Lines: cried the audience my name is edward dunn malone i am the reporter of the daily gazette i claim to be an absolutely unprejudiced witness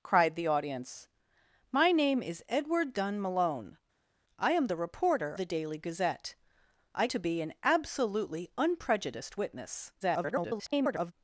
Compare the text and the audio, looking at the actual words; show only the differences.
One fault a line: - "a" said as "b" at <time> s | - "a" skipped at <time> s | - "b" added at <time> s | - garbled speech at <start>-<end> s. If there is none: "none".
- "of" skipped at 5.3 s
- "claim" skipped at 7.1 s
- garbled speech at 10.0-11.1 s